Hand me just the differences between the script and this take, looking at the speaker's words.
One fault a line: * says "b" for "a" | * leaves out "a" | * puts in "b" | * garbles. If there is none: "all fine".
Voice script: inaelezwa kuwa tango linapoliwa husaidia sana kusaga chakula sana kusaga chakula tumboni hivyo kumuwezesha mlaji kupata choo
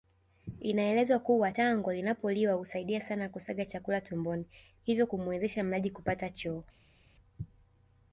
* leaves out "sana kusaga chakula"